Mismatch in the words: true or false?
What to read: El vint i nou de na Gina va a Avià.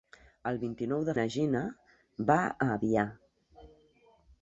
false